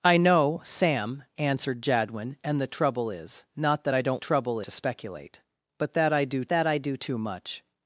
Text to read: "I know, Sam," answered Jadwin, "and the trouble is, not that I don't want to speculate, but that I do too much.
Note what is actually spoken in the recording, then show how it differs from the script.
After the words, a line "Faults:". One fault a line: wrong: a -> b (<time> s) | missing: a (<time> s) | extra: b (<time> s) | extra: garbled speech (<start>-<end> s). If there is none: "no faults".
"I know, Sam," answered Jadwin, "and the trouble is, not that I don't trouble to speculate, but that I do that I do too much.
Faults:
wrong: want -> trouble (4.1 s)
extra: that I do (6.5 s)